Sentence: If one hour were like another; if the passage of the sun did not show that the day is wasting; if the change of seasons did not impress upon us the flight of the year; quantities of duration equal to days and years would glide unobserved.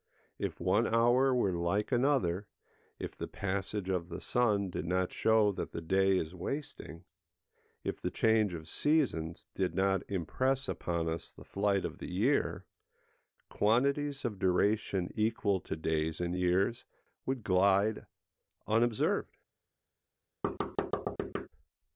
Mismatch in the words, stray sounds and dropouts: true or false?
true